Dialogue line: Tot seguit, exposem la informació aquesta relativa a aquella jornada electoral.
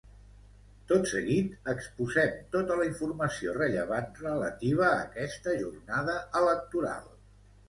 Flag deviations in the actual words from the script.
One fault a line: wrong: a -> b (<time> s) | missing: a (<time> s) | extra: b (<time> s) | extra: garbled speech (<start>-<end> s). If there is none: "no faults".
extra: tota (2.6 s)
wrong: aquesta -> rellevant (3.6 s)
wrong: aquella -> aquesta (5.1 s)